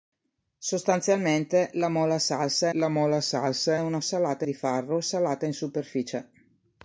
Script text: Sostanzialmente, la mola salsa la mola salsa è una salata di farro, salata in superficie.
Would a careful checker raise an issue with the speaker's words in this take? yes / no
no